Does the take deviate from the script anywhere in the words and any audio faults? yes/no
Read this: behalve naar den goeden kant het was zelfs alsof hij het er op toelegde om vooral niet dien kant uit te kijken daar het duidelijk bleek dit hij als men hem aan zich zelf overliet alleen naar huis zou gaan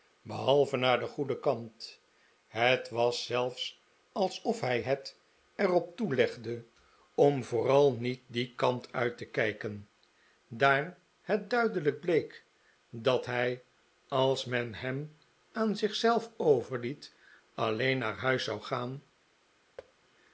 yes